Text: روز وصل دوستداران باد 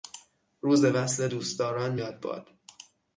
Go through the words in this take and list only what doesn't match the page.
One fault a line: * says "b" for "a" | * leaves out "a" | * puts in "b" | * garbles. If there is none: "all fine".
* puts in "یاد"